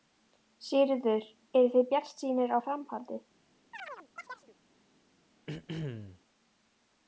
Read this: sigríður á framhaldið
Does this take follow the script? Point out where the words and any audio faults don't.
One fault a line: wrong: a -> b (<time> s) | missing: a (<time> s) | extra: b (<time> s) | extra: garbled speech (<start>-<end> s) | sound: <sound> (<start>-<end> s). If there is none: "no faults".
extra: eruð þið bjartsýnir (1.6 s)
sound: chirp (3.7-4.6 s)
sound: throat clearing (5.5-6.2 s)